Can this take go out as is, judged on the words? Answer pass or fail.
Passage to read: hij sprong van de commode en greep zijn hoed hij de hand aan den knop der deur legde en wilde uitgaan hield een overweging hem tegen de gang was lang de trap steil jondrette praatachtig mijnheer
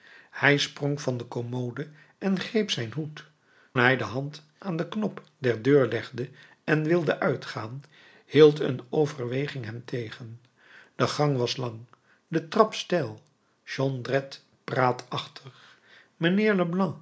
pass